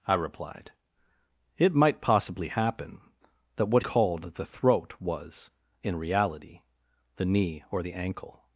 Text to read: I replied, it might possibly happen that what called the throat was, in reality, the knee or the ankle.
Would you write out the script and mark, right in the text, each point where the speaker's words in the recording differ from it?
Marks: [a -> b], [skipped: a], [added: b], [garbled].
I replied, it might possibly happen that what called the throat was, in reality, the knee or the ankle.